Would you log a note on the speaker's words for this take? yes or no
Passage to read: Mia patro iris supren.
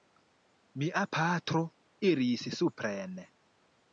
no